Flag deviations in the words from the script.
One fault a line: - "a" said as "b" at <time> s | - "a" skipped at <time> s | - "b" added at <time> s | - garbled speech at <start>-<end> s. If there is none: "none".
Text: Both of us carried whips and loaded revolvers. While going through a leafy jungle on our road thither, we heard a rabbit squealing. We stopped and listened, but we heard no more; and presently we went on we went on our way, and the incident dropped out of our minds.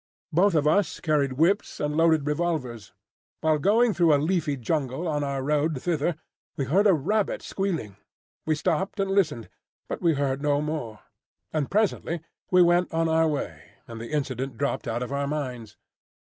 - "we went on" skipped at 13.1 s